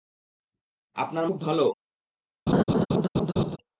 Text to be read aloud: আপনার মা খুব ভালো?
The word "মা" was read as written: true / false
false